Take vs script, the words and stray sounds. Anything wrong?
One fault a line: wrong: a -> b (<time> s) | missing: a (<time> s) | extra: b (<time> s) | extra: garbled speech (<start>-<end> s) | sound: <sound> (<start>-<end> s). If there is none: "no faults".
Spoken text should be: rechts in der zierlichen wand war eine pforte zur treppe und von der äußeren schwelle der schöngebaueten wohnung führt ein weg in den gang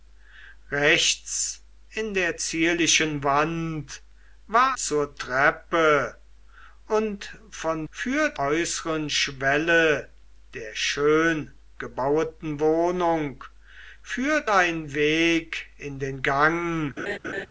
missing: eine pforte (4.8 s)
wrong: der -> führt (7.9 s)
sound: laugh (17.0-17.5 s)